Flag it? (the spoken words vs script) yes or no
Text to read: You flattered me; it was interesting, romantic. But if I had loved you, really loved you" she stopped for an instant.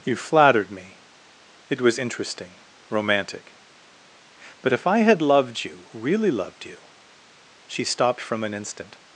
yes